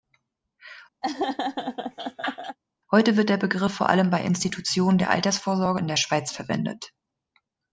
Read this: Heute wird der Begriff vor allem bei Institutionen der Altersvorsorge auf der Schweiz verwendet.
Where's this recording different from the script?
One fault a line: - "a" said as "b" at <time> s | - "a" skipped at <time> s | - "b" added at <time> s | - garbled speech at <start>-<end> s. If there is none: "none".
- "auf" said as "in" at 5.8 s